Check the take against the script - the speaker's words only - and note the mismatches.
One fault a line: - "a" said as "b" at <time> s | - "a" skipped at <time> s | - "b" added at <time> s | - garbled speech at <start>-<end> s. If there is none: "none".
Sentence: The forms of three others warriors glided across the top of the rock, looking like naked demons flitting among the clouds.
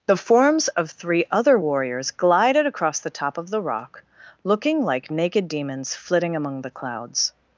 - "others" said as "other" at 1.3 s